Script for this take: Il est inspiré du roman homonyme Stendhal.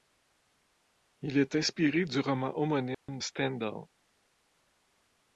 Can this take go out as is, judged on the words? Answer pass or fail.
pass